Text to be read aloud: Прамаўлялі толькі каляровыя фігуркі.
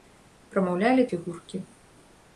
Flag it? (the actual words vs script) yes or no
yes